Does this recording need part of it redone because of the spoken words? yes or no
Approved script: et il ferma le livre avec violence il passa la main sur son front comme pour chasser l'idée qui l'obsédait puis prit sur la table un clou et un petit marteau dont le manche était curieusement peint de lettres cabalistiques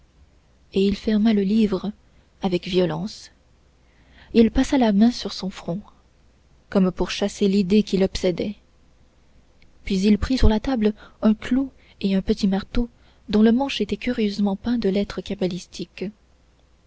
yes